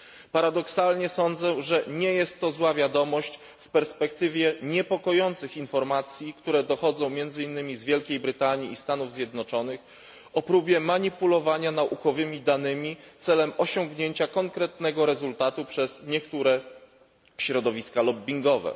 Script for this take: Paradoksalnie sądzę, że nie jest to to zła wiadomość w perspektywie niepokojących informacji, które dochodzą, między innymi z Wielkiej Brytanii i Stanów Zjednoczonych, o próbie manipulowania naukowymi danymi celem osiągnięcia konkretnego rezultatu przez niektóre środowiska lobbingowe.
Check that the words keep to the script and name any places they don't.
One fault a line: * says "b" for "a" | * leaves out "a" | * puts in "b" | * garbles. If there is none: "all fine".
* leaves out "to"